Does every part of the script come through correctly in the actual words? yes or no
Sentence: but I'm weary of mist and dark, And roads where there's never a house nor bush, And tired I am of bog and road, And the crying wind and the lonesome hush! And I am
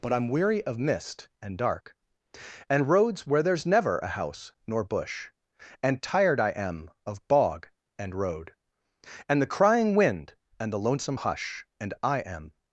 yes